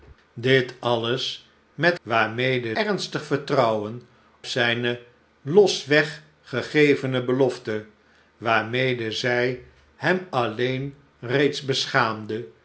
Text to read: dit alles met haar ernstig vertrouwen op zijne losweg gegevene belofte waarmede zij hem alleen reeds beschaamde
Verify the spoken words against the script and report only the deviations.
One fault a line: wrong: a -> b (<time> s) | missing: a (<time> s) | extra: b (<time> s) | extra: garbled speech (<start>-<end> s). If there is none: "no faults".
wrong: haar -> waarmede (2.0 s)
missing: op (4.0 s)